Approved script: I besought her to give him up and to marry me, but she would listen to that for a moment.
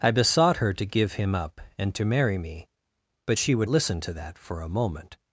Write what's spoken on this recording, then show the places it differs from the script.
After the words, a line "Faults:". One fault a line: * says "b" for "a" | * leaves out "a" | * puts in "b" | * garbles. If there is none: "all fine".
I besought her to give him up and to marry me, but she would listen to that for a moment.
Faults:
all fine